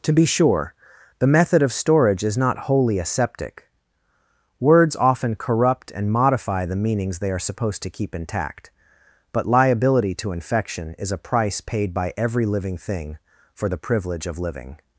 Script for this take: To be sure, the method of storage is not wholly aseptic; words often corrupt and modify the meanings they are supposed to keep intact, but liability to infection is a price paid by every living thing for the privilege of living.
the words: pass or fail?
pass